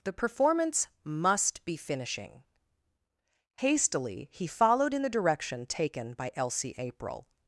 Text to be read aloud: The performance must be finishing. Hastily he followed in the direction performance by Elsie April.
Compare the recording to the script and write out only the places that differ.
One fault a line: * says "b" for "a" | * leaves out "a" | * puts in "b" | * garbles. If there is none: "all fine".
* says "taken" for "performance"